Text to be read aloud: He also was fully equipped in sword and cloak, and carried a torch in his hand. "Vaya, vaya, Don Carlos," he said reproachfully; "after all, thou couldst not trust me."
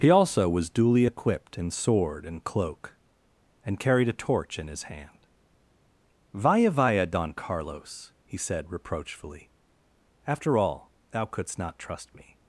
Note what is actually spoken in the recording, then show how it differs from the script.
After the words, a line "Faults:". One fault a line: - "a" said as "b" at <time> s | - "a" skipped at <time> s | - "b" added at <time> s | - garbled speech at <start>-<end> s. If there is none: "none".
He also was duly equipped in sword and cloak, and carried a torch in his hand. "Vaya, vaya, Don Carlos," he said reproachfully; "after all, thou couldst not trust me."
Faults:
- "fully" said as "duly" at 0.7 s